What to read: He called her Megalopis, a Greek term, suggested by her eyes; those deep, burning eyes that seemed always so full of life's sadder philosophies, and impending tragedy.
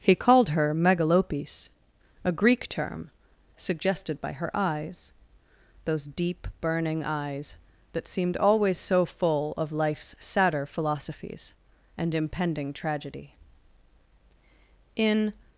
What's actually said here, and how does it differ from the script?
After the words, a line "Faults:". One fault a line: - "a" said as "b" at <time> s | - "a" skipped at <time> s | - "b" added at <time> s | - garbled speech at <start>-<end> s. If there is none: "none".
He called her Megalopis, a Greek term, suggested by her eyes; those deep, burning eyes that seemed always so full of life's sadder philosophies, and impending tragedy. In
Faults:
- "In" added at 14.9 s